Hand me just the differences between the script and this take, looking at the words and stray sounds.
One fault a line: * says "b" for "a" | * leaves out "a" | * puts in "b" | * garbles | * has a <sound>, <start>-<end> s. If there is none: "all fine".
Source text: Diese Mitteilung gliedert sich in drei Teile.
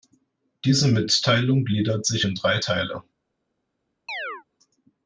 * has a chirp, 4.1-4.4 s